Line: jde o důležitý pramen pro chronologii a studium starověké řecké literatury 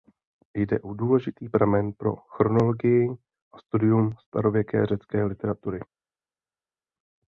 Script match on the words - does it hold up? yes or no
yes